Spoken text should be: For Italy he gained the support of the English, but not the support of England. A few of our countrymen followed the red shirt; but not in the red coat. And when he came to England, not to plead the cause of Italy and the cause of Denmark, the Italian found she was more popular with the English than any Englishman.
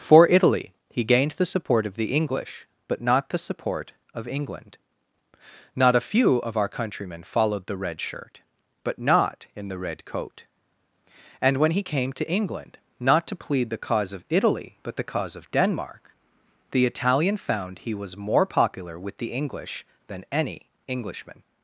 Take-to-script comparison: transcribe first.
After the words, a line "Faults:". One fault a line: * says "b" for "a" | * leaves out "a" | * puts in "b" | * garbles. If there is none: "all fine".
For Italy he gained the support of the English, but not the support of England. Not a few of our countrymen followed the red shirt; but not in the red coat. And when he came to England, not to plead the cause of Italy but the cause of Denmark, the Italian found he was more popular with the English than any Englishman.
Faults:
* puts in "Not"
* says "but" for "and"
* says "he" for "she"